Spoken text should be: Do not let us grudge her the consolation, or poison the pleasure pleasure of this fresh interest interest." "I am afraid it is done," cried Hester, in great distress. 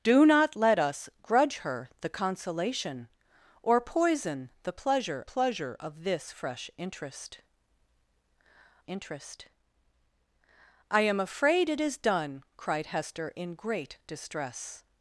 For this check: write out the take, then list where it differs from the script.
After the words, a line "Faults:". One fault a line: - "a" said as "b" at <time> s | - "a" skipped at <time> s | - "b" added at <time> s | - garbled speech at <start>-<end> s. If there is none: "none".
Do not let us grudge her the consolation, or poison the pleasure pleasure of this fresh interest interest." "I am afraid it is done," cried Hester, in great distress.
Faults:
none